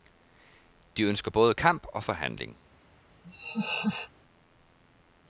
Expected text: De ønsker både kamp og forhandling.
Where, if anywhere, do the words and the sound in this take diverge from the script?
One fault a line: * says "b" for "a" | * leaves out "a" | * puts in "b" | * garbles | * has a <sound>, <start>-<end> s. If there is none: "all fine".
* has a laugh, 3.2-4.1 s